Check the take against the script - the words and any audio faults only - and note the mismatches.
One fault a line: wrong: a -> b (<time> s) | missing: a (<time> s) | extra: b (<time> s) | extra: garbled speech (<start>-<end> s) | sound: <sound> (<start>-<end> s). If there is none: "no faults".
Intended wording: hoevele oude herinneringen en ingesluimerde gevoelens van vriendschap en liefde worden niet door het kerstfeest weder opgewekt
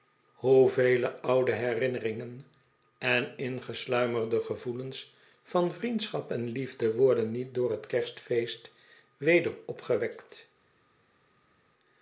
no faults